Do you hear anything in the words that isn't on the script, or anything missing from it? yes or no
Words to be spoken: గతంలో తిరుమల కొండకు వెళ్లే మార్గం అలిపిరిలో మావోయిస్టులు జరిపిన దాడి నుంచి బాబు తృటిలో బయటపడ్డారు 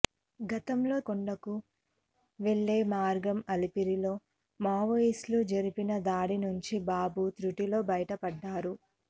yes